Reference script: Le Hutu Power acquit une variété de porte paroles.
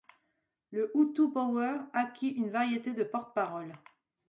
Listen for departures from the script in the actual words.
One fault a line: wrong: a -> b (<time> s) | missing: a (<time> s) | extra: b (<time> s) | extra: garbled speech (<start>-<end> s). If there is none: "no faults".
no faults